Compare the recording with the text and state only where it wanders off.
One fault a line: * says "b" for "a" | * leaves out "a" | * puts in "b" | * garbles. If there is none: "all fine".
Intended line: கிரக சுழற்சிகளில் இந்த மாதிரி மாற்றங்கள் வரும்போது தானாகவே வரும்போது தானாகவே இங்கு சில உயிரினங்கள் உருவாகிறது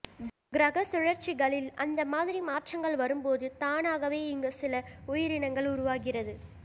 * says "அந்த" for "இந்த"
* leaves out "வரும்போது தானாகவே"